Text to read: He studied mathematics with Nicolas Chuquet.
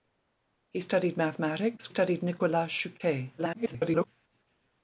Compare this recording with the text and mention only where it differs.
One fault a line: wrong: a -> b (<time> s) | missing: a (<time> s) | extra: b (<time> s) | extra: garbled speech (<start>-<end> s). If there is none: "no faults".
wrong: with -> studied (1.9 s)
extra: garbled speech (3.4-4.1 s)